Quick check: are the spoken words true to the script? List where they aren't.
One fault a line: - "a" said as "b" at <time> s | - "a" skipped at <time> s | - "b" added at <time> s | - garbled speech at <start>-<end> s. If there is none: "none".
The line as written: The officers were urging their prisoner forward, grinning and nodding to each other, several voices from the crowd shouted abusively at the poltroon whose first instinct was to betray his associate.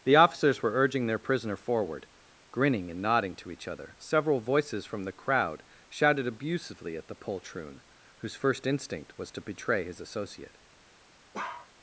none